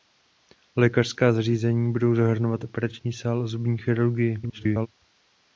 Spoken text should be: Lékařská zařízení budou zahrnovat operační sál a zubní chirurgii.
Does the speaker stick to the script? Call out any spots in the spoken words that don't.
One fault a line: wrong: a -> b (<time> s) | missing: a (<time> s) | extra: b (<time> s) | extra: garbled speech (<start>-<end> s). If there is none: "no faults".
extra: garbled speech (4.4-4.9 s)